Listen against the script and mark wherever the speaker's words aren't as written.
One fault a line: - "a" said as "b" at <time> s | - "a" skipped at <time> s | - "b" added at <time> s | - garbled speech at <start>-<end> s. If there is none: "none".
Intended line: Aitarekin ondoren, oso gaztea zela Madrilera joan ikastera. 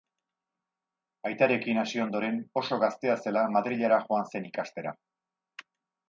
- "hasi" added at 1.8 s
- "zen" added at 4.3 s